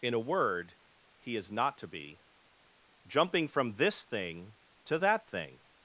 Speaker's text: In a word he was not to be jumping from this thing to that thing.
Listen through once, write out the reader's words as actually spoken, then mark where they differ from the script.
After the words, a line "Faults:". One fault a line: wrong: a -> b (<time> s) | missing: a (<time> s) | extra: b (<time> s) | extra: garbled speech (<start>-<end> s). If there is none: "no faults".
In a word he is not to be jumping from this thing to that thing.
Faults:
wrong: was -> is (1.4 s)